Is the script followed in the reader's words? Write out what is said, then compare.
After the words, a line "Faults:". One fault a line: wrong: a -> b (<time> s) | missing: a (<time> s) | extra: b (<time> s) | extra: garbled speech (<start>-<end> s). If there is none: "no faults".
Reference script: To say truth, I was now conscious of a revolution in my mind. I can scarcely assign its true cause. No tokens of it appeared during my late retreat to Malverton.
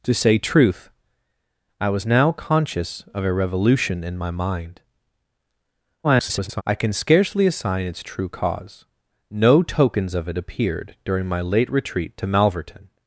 To say truth, I was now conscious of a revolution in my mind. [garbled] I can scarcely assign its true cause. No tokens of it appeared during my late retreat to Malverton.
Faults:
extra: garbled speech (6.0-6.6 s)